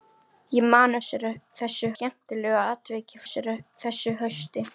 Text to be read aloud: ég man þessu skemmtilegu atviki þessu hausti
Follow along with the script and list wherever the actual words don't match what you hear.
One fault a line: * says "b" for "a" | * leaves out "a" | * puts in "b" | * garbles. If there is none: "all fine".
all fine